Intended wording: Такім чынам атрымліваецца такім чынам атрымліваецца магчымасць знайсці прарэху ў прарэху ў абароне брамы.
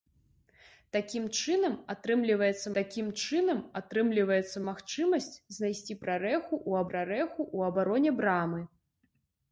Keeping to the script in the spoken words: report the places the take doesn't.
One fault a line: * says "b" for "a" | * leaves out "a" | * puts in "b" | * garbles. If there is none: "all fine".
all fine